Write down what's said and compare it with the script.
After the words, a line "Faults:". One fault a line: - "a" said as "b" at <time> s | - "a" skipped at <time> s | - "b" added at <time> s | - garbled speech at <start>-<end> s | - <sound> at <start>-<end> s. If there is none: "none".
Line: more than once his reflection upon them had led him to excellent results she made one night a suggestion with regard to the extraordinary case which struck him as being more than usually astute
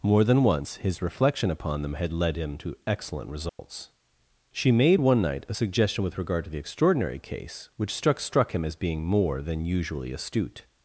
more than once his reflection upon them had led him to excellent results she made one night a suggestion with regard to the extraordinary case which struck struck him as being more than usually astute
Faults:
- dropout at 3.5-3.6 s
- "struck" added at 8.2 s